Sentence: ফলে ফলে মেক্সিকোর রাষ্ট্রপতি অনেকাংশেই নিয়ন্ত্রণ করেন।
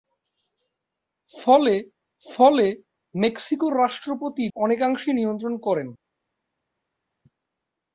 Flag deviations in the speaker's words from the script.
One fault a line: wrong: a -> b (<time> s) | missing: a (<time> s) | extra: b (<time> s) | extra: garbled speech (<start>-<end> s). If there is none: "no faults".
no faults